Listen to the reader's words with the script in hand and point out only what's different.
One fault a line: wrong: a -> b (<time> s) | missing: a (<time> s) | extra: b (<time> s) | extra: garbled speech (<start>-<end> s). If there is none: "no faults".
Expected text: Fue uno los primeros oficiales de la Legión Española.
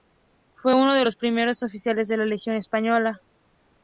extra: de (0.9 s)